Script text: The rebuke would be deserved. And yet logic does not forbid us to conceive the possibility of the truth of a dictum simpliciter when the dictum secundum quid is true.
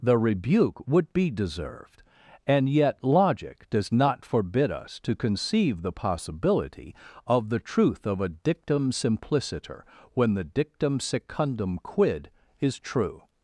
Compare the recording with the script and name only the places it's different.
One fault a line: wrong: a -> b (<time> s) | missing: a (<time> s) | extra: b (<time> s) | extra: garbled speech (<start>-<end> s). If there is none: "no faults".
no faults